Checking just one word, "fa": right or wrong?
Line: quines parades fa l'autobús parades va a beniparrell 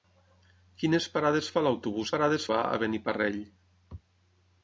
right